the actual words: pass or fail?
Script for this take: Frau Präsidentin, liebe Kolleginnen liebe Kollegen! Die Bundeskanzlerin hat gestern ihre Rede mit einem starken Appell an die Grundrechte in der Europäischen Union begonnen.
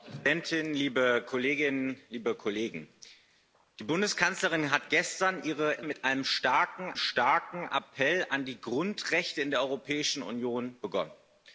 fail